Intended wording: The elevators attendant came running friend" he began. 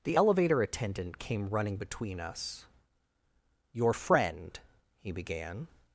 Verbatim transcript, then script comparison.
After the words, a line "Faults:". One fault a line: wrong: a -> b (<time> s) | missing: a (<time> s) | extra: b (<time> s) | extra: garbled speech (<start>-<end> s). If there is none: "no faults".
The elevator attendant came running between us. "Your friend" he began.
Faults:
wrong: elevators -> elevator (0.1 s)
extra: between us Your (1.8 s)